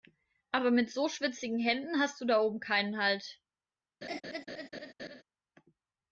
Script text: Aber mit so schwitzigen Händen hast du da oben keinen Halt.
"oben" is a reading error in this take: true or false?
false